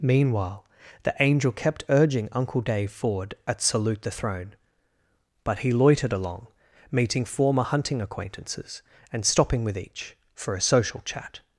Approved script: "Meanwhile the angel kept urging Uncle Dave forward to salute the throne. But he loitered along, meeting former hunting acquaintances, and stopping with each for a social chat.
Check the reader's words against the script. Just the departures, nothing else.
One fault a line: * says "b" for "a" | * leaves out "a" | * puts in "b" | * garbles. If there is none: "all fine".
* says "at" for "to"